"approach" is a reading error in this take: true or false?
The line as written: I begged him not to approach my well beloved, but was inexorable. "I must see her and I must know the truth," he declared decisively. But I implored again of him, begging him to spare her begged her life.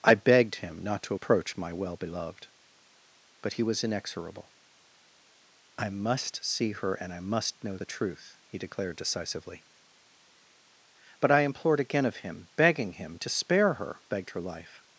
false